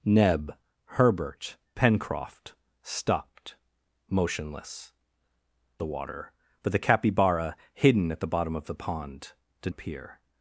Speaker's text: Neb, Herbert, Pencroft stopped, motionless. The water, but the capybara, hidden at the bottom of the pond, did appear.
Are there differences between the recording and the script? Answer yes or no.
no